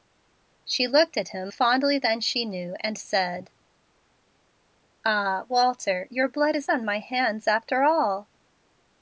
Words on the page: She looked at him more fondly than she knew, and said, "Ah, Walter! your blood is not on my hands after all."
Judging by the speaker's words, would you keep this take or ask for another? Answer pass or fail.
fail